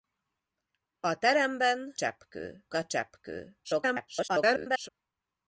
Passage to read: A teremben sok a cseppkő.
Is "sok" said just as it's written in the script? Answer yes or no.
no